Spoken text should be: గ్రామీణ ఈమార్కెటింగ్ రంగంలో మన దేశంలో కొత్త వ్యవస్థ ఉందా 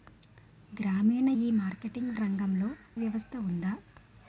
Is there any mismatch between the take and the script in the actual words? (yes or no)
yes